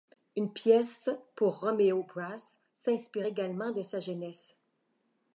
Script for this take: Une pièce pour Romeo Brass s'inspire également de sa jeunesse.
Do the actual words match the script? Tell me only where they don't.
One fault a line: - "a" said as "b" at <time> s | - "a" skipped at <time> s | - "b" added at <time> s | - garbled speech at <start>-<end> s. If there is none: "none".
none